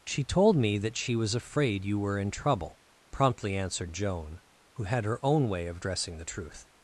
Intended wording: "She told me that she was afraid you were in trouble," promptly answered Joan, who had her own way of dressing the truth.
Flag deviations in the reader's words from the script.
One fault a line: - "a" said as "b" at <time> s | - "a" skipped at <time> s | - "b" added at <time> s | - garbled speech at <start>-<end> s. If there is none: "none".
none